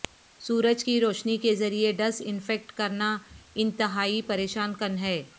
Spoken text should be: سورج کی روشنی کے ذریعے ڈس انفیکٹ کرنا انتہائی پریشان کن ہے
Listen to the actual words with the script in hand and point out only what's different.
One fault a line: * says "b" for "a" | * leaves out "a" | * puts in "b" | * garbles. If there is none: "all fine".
all fine